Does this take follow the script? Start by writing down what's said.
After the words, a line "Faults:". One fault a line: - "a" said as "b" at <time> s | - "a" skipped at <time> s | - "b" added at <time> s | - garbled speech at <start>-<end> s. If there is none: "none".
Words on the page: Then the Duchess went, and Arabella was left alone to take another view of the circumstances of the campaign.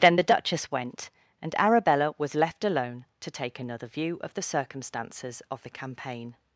Then the Duchess went, and Arabella was left alone to take another view of the circumstances of the campaign.
Faults:
none